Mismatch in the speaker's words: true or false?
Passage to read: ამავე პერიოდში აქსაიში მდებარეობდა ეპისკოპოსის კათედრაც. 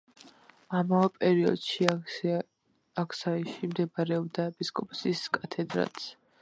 false